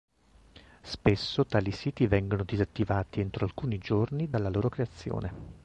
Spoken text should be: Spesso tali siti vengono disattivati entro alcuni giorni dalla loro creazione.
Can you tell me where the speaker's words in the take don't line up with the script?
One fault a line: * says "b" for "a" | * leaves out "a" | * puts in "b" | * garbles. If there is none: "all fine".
all fine